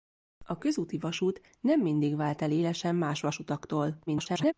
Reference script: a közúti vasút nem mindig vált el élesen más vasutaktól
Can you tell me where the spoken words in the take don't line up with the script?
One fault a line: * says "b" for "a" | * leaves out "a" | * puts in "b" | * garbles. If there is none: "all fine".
* garbles